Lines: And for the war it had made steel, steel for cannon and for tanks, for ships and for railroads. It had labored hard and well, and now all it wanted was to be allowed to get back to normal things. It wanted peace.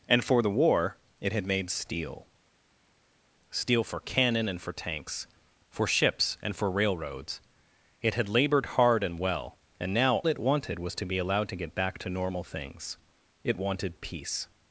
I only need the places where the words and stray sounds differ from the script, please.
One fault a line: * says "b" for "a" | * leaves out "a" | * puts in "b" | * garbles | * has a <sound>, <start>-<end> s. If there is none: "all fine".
* leaves out "all"